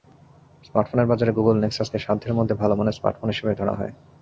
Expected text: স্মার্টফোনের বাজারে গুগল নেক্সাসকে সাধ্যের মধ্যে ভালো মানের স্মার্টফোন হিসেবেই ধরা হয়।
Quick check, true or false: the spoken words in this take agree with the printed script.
true